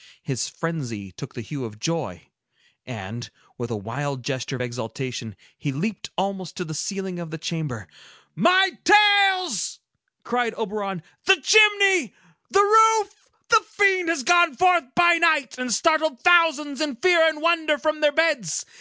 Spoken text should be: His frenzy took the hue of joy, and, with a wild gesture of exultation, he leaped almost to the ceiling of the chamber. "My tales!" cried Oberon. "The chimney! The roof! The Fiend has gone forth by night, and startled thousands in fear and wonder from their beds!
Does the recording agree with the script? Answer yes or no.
yes